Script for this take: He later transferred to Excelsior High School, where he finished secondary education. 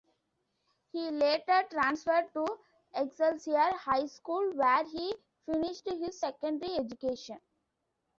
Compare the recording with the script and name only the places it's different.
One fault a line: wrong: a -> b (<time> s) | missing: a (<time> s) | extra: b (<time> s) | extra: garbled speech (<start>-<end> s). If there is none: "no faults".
extra: his (5.9 s)